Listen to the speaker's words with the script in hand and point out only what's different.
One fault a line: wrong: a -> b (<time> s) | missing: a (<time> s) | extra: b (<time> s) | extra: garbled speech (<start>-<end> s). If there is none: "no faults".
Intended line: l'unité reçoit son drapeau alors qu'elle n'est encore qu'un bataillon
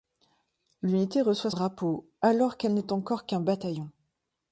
missing: son (1.5 s)